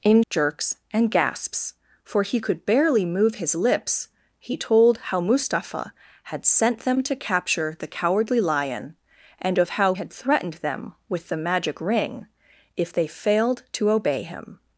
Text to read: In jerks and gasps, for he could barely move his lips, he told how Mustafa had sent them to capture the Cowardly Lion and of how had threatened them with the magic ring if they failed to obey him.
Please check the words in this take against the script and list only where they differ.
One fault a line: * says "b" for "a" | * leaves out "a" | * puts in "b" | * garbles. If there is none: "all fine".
all fine